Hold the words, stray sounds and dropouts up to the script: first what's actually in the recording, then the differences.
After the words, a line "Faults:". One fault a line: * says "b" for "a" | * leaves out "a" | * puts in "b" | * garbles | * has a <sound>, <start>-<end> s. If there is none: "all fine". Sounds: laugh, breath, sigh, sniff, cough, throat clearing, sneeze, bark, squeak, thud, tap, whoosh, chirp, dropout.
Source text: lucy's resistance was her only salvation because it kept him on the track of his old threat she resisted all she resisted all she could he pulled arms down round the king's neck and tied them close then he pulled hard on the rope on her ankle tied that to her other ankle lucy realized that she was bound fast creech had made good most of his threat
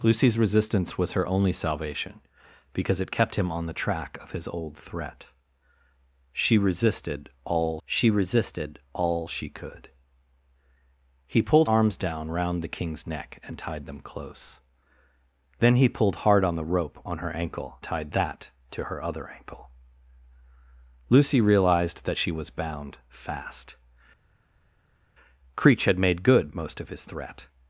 lucy's resistance was her only salvation because it kept him on the track of his old threat she resisted all she resisted all she could he pulled arms down round the king's neck and tied them close then he pulled hard on the rope on her ankle tied that to her other ankle lucy realized that she was bound fast creech had made good most of his threat
Faults:
all fine